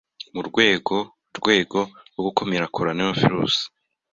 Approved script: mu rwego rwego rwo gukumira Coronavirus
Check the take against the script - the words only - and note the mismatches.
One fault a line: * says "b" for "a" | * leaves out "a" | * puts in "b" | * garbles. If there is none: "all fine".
all fine